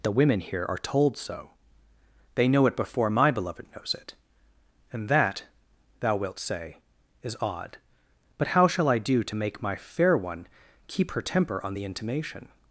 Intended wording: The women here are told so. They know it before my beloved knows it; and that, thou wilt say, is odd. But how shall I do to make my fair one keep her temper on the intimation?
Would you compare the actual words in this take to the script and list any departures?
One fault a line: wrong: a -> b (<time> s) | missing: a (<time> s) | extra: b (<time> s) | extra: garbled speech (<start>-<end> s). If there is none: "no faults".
no faults